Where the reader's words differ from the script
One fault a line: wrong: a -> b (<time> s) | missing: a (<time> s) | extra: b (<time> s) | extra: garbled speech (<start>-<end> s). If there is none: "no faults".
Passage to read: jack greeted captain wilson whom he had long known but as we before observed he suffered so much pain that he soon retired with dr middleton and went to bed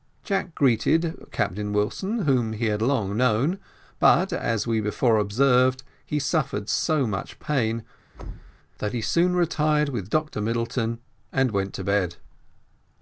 no faults